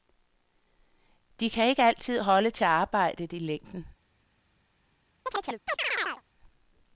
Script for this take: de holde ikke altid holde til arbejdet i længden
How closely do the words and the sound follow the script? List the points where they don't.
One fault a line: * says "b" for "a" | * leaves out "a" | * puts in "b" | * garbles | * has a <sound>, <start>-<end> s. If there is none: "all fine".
* says "kan" for "holde"
* has a chirp, 5.3-6.2 s